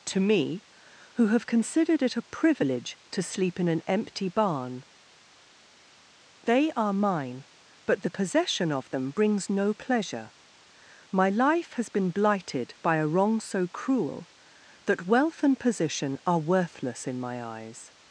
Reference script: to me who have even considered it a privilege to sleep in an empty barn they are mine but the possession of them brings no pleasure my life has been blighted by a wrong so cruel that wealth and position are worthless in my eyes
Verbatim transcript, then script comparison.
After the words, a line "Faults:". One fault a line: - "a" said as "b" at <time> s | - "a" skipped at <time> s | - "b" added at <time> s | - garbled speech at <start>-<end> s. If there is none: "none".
to me who have considered it a privilege to sleep in an empty barn they are mine but the possession of them brings no pleasure my life has been blighted by a wrong so cruel that wealth and position are worthless in my eyes
Faults:
- "even" skipped at 1.4 s